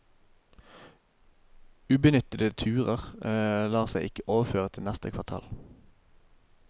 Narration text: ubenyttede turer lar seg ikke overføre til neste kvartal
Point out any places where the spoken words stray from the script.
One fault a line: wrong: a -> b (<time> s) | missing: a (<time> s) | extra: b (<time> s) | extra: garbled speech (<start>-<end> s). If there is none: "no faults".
no faults